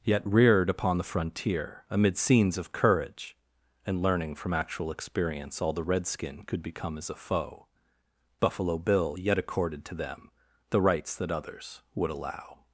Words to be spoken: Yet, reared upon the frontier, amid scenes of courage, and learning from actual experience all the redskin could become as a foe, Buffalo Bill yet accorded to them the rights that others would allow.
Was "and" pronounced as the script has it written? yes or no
yes